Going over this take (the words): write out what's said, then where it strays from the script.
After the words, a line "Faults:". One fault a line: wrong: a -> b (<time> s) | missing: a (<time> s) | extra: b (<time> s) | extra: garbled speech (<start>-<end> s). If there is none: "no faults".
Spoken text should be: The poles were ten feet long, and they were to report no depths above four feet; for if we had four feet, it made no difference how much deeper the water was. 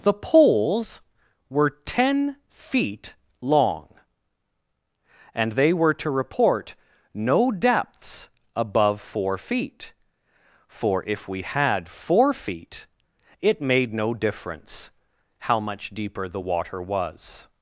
The poles were ten feet long, and they were to report no depths above four feet; for if we had four feet, it made no difference how much deeper the water was.
Faults:
no faults